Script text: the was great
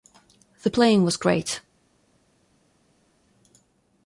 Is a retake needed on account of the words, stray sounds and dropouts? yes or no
yes